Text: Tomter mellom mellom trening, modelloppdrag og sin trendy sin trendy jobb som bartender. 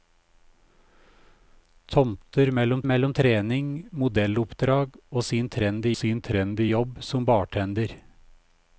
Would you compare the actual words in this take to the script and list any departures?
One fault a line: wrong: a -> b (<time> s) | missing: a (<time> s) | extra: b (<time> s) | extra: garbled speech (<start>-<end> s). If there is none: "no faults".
no faults